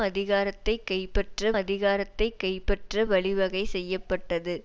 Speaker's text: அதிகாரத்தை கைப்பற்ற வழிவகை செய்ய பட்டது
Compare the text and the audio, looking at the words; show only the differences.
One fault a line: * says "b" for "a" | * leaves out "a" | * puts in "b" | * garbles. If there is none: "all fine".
* puts in "அதிகாரத்தை கைப்பற்ற"